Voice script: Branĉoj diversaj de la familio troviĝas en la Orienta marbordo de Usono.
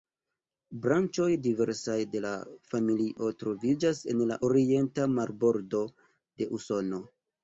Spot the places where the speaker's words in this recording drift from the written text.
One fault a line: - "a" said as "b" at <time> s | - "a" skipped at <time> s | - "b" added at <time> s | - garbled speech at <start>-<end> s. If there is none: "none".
none